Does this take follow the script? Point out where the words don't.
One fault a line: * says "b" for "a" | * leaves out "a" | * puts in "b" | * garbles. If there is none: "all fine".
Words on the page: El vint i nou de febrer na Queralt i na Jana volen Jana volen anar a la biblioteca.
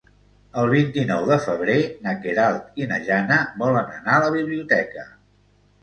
* leaves out "Jana volen"